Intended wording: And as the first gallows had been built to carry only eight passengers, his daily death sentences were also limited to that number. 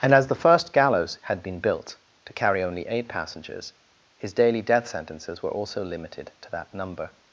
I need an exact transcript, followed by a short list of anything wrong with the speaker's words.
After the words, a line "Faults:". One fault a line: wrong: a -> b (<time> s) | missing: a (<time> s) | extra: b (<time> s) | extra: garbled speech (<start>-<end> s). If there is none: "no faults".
And as the first gallows had been built to carry only eight passengers, his daily death sentences were also limited to that number.
Faults:
no faults